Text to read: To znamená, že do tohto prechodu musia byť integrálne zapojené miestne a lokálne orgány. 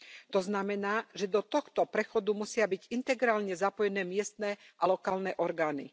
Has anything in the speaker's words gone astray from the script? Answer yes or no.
no